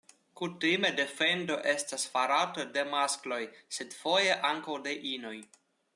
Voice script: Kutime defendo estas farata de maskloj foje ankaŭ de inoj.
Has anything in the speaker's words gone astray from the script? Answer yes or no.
yes